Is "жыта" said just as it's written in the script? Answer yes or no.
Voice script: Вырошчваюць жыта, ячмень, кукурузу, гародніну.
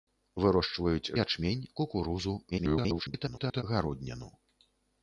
no